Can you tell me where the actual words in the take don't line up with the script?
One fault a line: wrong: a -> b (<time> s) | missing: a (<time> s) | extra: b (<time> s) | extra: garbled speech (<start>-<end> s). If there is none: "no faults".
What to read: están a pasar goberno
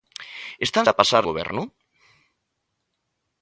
no faults